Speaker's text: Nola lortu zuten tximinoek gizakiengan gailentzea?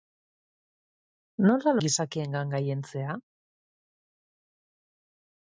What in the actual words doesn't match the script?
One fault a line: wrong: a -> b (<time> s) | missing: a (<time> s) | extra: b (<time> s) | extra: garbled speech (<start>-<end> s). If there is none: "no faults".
missing: lortu zuten tximinoek (1.7 s)